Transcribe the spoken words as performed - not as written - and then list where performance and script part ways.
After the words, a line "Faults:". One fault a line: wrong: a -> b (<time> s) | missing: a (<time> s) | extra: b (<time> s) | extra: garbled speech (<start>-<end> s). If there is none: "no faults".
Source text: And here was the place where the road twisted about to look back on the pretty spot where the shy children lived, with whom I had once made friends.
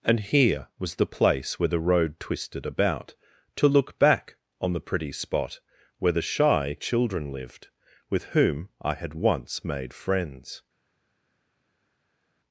And here was the place where the road twisted about to look back on the pretty spot where the shy children lived, with whom I had once made friends.
Faults:
no faults